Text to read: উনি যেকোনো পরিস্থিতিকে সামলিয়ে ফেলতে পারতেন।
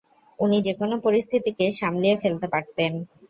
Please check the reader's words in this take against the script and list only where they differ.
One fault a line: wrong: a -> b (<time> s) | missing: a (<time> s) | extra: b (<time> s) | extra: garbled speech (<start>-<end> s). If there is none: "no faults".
no faults